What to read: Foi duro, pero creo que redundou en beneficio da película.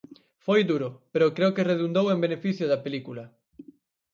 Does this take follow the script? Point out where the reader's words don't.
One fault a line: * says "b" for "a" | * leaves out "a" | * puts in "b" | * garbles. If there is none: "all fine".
all fine